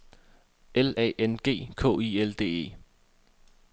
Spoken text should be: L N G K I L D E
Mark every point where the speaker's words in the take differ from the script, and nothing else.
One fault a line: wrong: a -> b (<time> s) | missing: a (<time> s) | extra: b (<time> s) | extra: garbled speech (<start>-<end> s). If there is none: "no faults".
extra: A (0.9 s)